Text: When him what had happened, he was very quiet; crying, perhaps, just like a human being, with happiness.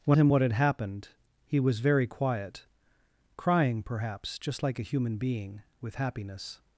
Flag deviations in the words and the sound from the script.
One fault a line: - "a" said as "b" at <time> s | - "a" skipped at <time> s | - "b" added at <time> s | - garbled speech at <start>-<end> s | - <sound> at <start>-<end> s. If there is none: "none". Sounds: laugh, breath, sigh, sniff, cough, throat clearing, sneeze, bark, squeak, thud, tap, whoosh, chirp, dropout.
none